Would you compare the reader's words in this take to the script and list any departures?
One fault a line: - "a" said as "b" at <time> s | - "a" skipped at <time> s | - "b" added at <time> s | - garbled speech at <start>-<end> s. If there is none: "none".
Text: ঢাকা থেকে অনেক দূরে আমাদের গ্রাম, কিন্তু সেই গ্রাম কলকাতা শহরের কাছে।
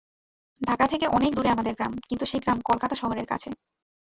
none